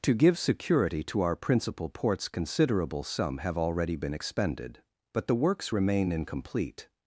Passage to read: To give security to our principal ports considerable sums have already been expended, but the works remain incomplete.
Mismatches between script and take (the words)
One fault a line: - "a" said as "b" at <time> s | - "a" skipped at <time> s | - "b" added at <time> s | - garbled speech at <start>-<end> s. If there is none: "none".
- "sums" said as "sum" at 3.0 s